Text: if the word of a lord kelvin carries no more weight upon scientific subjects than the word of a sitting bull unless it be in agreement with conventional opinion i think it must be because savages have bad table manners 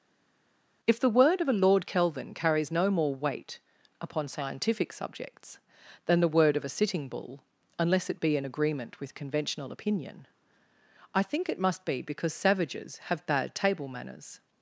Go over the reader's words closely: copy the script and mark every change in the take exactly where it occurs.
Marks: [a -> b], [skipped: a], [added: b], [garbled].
if the word of a lord kelvin carries no more weight upon scientific subjects than the word of a sitting bull unless it be in agreement with conventional opinion i think it must be because savages have bad table manners